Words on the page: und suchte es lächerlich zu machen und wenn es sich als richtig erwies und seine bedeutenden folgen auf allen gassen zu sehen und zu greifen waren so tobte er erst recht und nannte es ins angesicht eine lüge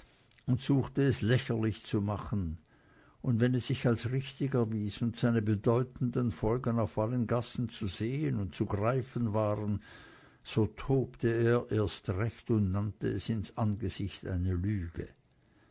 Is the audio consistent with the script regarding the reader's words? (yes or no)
yes